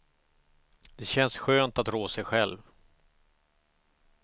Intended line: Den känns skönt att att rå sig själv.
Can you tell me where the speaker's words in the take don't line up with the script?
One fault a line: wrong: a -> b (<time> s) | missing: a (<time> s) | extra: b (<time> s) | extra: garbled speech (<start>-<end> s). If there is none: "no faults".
wrong: Den -> Det (0.9 s)
missing: att (1.9 s)